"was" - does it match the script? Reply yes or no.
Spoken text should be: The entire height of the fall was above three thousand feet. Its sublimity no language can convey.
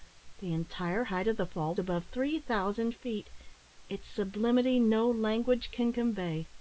no